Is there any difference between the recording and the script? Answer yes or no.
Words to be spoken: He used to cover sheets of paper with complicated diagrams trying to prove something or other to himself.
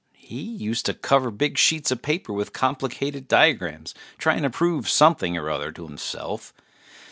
yes